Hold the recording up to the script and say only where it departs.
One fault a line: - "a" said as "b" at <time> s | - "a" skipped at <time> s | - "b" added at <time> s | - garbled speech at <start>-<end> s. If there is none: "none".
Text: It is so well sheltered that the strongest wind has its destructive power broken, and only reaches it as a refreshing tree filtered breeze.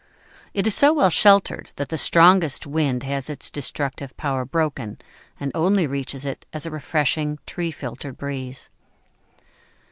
none